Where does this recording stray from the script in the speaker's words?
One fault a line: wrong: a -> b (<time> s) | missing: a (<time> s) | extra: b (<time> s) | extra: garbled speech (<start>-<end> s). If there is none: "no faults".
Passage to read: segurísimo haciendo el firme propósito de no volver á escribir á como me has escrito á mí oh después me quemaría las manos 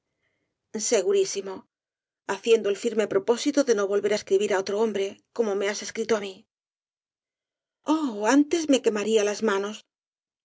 extra: otro hombre (4.6 s)
wrong: después -> antes (8.4 s)